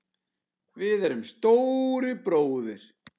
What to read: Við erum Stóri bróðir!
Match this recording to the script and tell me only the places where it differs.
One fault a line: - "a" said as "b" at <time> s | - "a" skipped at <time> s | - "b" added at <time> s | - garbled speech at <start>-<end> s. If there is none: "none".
none